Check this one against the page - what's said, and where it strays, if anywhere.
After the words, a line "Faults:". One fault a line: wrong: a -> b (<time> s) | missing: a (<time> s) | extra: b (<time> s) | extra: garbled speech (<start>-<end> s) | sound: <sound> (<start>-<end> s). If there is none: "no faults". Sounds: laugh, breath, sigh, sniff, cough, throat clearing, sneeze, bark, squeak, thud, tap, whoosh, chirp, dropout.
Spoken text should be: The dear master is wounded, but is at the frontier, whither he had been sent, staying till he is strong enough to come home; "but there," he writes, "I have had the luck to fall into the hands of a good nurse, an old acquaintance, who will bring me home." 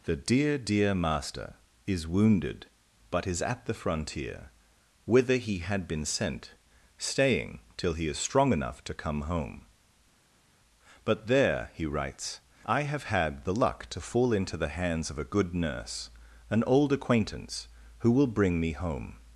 The dear dear master is wounded, but is at the frontier, whither he had been sent, staying till he is strong enough to come home; "but there," he writes, "I have had the luck to fall into the hands of a good nurse, an old acquaintance, who will bring me home."
Faults:
extra: dear (0.6 s)